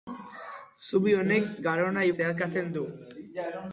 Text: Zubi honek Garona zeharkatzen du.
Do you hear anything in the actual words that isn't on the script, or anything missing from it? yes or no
no